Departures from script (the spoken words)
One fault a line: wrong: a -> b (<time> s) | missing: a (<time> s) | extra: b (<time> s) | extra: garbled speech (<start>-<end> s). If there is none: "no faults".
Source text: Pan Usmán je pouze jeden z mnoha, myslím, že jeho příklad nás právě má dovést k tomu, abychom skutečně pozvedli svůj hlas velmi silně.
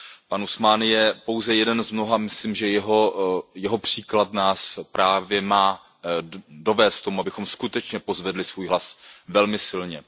no faults